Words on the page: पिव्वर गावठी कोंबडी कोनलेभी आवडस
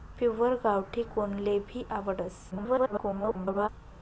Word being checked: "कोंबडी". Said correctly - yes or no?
no